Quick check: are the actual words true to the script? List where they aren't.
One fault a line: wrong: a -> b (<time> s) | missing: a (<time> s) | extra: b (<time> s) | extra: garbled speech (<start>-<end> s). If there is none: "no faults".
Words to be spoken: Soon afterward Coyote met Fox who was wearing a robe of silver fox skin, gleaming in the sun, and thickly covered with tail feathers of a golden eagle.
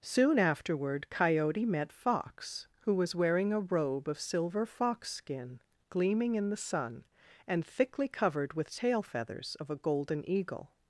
no faults